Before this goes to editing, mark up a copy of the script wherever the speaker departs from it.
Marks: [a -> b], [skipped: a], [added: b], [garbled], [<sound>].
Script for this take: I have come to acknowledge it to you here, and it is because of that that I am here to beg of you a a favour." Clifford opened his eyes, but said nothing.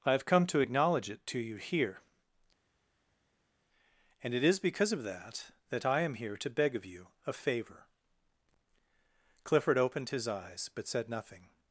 I have come to acknowledge it to you here, and it is because of that that I am here to beg of you a [a favour." -> favor] Clifford opened his eyes, but said nothing.